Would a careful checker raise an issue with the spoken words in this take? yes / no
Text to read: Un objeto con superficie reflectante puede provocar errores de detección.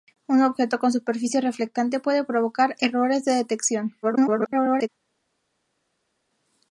yes